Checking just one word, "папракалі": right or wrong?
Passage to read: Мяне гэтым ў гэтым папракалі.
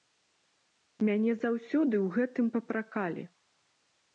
right